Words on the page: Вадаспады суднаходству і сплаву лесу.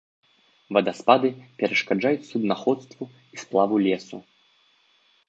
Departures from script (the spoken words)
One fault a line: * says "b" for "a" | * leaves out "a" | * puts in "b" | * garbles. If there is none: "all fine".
* puts in "перашкаджаюць"